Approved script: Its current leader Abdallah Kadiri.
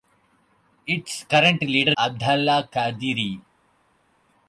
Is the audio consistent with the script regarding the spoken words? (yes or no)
yes